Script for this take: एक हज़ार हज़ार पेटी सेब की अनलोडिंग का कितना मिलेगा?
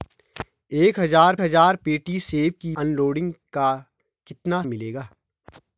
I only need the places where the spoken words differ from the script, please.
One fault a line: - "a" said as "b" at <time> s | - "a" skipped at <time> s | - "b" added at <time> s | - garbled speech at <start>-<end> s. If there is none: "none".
none